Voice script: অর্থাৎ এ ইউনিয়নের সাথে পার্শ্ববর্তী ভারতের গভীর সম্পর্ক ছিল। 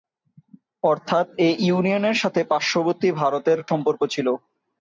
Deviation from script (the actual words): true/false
true